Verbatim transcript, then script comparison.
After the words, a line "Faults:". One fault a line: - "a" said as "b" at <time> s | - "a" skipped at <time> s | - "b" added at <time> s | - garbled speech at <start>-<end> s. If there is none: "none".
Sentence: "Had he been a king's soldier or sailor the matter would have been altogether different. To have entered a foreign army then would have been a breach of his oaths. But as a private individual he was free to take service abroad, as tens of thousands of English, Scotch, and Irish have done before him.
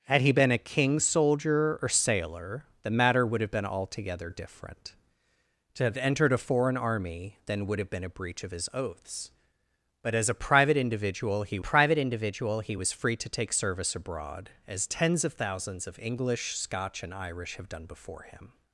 "Had he been a king's soldier or sailor the matter would have been altogether different. To have entered a foreign army then would have been a breach of his oaths. But as a private individual he private individual he was free to take service abroad, as tens of thousands of English, Scotch, and Irish have done before him.
Faults:
- "private individual he" added at 11.6 s